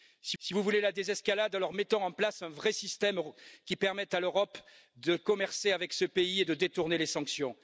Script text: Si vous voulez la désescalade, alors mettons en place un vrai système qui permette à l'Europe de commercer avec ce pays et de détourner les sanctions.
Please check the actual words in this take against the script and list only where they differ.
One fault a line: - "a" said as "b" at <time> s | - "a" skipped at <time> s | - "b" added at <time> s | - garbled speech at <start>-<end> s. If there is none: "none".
- "si" added at 0.4 s